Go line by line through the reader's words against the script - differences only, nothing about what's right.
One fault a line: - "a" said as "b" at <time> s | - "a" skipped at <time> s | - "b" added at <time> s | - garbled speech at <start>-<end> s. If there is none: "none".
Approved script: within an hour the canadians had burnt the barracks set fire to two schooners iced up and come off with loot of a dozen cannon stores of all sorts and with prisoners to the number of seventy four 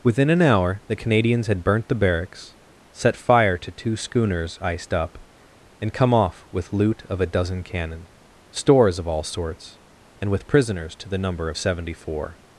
none